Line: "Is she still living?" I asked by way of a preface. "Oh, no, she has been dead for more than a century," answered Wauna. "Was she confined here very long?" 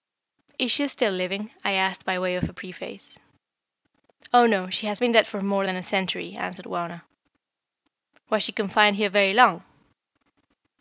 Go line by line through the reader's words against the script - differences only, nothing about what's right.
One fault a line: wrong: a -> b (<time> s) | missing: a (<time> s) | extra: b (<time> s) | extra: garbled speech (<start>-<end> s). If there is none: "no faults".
no faults